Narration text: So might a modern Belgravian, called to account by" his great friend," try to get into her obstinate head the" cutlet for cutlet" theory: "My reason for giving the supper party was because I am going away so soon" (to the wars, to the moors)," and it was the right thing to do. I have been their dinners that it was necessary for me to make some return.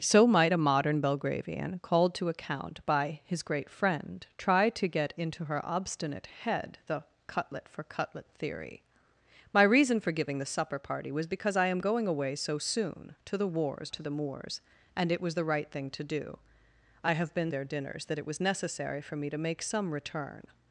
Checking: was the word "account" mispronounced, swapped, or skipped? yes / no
no